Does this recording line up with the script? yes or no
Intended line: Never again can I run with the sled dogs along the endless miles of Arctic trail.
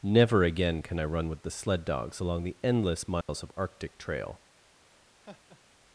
yes